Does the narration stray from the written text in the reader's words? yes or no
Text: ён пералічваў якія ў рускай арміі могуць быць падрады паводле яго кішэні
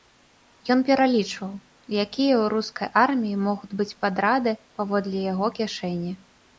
no